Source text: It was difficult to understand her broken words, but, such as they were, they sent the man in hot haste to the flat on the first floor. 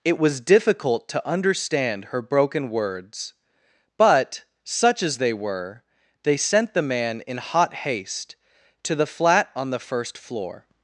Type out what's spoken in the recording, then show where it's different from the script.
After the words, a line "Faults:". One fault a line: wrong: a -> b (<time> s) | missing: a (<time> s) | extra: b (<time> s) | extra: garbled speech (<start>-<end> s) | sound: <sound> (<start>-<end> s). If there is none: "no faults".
It was difficult to understand her broken words, but, such as they were, they sent the man in hot haste to the flat on the first floor.
Faults:
no faults